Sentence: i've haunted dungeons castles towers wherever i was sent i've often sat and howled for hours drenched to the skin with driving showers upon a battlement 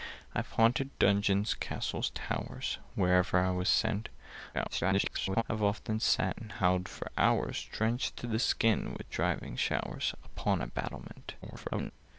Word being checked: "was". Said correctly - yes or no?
yes